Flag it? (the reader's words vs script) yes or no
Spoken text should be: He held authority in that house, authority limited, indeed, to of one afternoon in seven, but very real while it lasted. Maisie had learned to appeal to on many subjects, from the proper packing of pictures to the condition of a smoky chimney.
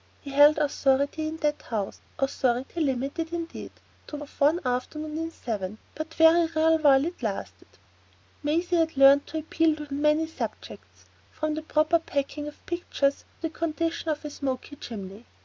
no